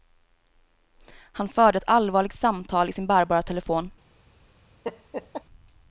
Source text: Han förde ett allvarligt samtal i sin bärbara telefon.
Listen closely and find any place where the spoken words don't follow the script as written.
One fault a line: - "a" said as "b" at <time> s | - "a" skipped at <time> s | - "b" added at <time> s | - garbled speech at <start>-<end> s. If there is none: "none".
none